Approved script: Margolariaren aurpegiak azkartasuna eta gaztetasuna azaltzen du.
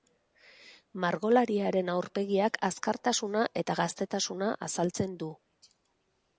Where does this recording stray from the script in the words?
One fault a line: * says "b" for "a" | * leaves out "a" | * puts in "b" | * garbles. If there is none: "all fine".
all fine